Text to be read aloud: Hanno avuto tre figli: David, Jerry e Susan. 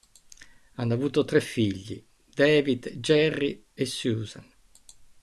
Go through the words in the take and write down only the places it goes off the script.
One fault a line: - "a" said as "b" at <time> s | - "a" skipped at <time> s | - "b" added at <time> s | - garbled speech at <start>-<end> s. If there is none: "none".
none